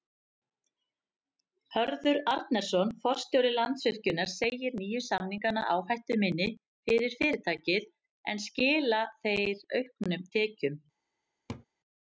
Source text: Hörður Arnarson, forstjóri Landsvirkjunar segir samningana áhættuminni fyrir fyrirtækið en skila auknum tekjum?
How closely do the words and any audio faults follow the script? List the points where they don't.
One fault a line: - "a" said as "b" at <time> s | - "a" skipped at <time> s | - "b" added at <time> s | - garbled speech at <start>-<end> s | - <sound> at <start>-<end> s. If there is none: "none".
- "nýju" added at 4.8 s
- "þeir" added at 9.3 s
- laugh at 11.5-11.7 s